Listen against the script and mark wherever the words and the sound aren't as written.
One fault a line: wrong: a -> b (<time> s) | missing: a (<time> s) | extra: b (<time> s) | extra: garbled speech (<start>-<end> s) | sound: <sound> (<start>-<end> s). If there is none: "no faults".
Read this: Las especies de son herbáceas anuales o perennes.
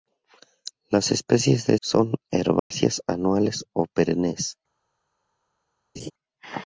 sound: dropout (2.6-2.7 s)
sound: laugh (6.0-6.1 s)